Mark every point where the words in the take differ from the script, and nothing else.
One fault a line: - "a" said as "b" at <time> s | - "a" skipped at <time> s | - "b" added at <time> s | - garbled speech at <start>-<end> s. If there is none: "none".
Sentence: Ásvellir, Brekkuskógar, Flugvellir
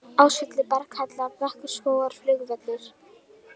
- "Berghella" added at 0.7 s